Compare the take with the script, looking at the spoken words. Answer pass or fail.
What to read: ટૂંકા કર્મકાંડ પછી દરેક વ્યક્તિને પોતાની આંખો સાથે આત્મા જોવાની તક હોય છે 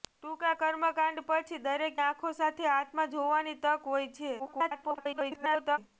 fail